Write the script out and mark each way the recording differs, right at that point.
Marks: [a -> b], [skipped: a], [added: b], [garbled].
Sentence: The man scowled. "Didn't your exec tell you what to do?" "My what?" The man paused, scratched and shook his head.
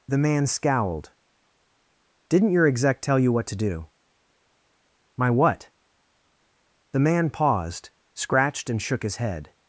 The man scowled. "Didn't your exec tell you what to do?" "My what?" The man paused, scratched and shook his head.